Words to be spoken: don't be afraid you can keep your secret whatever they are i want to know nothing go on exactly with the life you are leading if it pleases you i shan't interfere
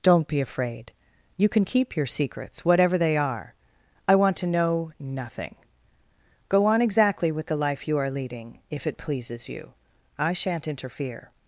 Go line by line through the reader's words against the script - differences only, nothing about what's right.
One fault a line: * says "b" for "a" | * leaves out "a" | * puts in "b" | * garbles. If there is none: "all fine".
* says "secrets" for "secret"